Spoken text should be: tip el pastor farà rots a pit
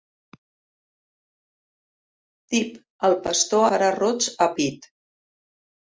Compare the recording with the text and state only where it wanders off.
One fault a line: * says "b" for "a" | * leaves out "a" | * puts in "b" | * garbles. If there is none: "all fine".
all fine